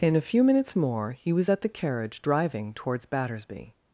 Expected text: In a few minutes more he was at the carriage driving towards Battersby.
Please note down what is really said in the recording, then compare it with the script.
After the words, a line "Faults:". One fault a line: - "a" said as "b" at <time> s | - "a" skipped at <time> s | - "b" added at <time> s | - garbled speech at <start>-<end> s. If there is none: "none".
In a few minutes more he was at the carriage driving towards Battersby.
Faults:
none